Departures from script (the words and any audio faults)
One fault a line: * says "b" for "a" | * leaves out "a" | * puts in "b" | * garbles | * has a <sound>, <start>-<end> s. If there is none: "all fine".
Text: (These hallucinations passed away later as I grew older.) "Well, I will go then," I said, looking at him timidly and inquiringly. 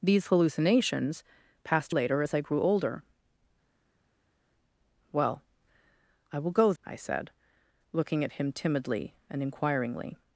* leaves out "away"
* leaves out "then"